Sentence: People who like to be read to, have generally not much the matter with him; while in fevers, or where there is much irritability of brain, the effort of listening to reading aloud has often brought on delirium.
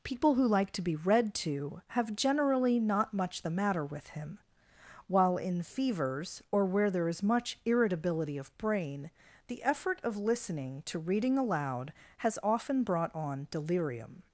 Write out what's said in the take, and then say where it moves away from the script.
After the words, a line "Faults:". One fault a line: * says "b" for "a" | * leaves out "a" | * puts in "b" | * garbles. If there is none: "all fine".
People who like to be read to, have generally not much the matter with him; while in fevers, or where there is much irritability of brain, the effort of listening to reading aloud has often brought on delirium.
Faults:
all fine